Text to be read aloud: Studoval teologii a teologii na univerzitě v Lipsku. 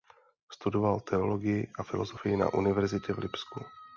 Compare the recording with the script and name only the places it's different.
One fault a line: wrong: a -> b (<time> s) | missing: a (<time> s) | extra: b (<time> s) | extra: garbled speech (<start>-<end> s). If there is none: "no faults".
wrong: teologii -> filozofii (1.8 s)